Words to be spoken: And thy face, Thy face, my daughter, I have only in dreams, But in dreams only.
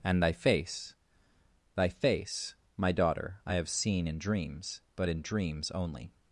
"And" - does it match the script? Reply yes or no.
yes